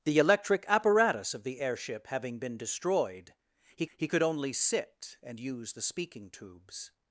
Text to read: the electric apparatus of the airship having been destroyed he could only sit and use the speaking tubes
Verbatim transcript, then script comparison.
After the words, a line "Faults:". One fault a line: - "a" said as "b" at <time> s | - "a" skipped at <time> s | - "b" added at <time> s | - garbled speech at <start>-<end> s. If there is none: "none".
the electric apparatus of the airship having been destroyed he he could only sit and use the speaking tubes
Faults:
- "he" added at 4.0 s